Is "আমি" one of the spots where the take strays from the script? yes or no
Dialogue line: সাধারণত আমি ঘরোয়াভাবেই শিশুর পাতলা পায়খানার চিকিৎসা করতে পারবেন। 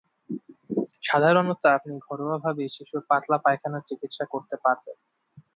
yes